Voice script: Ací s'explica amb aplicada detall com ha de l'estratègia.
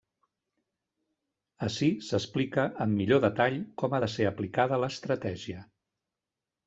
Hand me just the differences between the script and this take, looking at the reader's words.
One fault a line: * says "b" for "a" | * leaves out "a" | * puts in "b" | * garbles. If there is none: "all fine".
* says "millor" for "aplicada"
* puts in "ser aplicada"